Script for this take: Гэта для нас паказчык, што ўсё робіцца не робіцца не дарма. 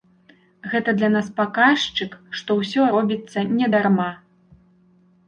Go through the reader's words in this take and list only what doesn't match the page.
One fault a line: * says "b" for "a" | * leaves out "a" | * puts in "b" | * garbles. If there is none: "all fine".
* leaves out "робіцца не"